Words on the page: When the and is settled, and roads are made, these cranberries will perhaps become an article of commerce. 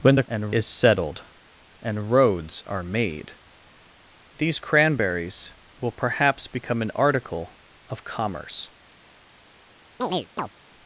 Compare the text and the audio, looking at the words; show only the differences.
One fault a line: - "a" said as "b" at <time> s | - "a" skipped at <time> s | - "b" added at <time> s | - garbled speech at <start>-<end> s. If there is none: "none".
none